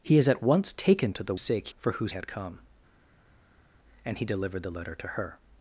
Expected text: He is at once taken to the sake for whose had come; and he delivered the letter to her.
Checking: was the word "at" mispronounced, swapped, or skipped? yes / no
no